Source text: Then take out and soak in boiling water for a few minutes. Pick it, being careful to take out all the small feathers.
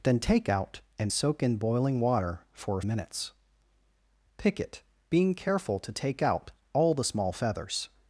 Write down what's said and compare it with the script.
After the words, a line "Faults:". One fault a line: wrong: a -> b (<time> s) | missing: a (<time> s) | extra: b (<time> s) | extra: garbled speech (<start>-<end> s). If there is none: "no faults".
Then take out and soak in boiling water for a minutes. Pick it, being careful to take out all the small feathers.
Faults:
missing: few (2.8 s)